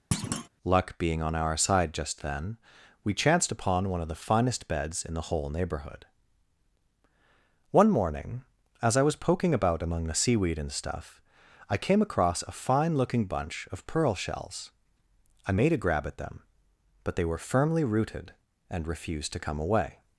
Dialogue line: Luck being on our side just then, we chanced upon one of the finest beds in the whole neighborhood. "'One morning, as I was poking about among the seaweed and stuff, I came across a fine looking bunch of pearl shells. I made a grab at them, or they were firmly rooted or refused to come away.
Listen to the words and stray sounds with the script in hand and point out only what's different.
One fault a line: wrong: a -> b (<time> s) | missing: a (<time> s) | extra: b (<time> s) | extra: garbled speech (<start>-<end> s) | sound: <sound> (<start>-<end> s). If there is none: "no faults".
sound: thud (0.1-0.5 s)
wrong: or -> but (17.0 s)
wrong: or -> and (18.7 s)